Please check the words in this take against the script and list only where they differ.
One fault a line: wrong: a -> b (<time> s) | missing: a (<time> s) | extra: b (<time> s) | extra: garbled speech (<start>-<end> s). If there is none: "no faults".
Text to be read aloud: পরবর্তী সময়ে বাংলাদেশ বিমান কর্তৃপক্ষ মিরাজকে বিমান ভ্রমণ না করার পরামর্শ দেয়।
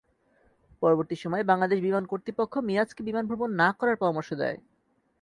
no faults